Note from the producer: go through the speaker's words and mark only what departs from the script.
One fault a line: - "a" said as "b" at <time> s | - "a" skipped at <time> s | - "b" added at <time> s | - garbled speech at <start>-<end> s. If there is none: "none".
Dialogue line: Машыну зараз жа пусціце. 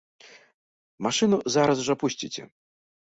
none